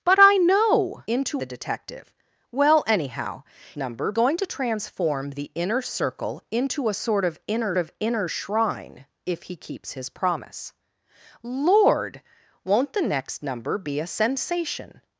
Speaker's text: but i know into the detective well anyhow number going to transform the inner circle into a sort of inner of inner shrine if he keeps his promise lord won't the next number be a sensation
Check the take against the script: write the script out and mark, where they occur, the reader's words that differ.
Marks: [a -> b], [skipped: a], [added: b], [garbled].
but i know into the detective well anyhow number going to transform the inner circle into a sort of inner of inner shrine if he keeps his promise lord won't the next number be a sensation